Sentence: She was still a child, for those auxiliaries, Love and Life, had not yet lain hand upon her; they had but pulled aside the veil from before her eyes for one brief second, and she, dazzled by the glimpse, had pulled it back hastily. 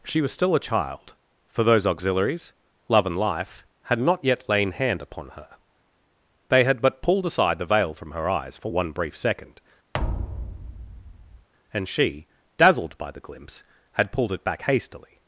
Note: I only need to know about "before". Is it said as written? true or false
false